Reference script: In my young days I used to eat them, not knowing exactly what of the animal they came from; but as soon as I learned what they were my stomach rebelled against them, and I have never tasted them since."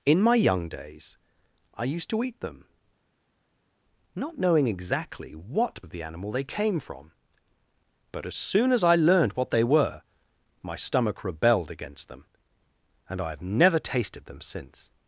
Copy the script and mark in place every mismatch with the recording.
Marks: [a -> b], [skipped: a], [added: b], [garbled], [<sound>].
In my young days I used to eat them, not knowing exactly what of the animal they came from; but as soon as I learned what they were my stomach rebelled against them, and I have never tasted them since."